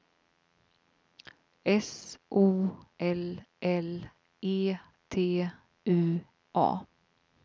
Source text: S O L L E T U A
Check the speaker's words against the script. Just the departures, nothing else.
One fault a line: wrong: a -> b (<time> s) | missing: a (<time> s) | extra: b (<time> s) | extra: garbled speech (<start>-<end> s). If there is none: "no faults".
no faults